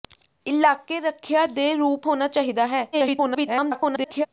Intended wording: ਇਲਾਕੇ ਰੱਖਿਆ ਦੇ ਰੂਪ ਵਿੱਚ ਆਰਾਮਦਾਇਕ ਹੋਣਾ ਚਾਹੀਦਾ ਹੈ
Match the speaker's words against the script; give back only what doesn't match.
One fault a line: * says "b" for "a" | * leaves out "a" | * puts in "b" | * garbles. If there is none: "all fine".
* leaves out "ਵਿੱਚ ਆਰਾਮਦਾਇਕ"
* garbles